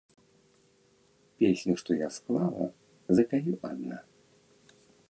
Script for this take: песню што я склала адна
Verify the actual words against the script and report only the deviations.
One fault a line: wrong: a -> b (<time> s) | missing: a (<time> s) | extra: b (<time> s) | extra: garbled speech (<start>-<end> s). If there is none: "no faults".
extra: запяю (3.2 s)